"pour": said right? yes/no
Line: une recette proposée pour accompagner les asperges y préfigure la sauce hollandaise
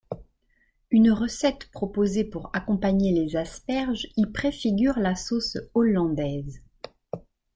yes